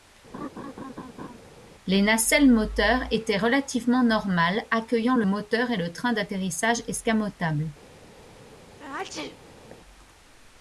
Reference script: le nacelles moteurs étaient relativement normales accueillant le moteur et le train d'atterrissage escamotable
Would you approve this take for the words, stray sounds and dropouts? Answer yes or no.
no